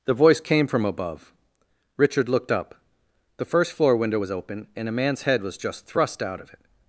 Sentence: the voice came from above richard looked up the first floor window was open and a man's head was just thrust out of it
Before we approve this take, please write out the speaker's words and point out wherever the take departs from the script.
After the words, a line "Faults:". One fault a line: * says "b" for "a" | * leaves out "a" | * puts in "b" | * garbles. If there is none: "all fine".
the voice came from above richard looked up the first floor window was open and a man's head was just thrust out of it
Faults:
all fine